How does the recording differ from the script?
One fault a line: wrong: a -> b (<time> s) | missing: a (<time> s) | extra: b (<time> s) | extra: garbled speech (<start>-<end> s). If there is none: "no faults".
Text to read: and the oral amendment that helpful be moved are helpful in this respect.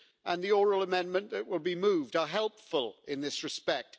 wrong: helpful -> will (1.5 s)